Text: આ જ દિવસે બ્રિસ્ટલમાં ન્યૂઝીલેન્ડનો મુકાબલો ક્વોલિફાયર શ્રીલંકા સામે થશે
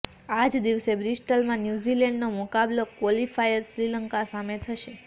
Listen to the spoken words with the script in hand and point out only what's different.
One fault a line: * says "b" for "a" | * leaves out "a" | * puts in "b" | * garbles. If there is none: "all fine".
all fine